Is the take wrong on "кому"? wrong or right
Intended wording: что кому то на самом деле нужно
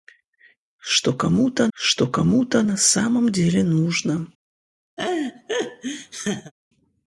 right